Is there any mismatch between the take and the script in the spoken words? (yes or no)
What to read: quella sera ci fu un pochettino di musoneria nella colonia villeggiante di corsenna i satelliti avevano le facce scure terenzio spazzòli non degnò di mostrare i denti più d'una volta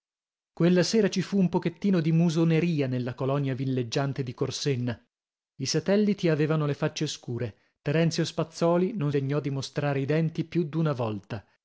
no